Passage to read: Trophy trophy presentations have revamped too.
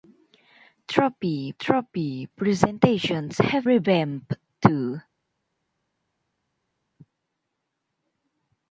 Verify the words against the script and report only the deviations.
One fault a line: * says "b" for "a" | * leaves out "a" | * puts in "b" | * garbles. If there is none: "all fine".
all fine